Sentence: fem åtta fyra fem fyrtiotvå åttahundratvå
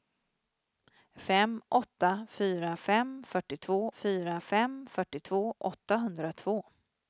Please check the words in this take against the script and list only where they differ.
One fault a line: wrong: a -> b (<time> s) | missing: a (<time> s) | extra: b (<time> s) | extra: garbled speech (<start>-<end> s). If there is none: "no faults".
extra: fyra fem fyrtiotvå (4.0 s)